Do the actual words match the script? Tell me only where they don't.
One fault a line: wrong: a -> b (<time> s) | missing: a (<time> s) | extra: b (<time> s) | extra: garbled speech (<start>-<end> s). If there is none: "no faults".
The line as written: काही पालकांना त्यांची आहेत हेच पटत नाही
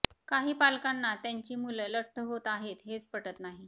extra: मुलं लठ्ठ होत (1.6 s)